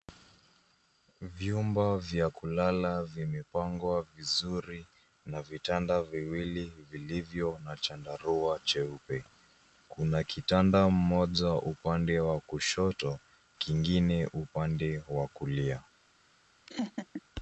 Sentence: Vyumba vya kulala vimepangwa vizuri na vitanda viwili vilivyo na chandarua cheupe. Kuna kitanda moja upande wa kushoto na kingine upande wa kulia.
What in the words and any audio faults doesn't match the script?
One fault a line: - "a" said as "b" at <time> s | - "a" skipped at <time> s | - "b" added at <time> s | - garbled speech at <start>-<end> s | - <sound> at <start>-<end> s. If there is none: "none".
- "na" skipped at 13.2 s
- laugh at 16.7-17.2 s